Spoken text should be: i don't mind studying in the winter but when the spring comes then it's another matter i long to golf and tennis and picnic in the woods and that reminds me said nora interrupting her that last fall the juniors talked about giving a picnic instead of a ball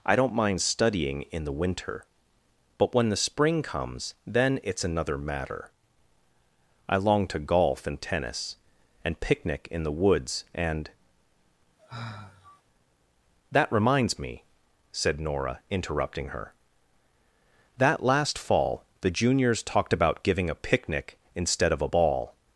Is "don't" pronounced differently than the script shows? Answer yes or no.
no